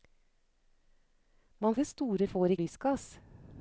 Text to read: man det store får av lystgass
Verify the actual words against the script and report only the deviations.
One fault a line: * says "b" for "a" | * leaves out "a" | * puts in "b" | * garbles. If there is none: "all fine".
all fine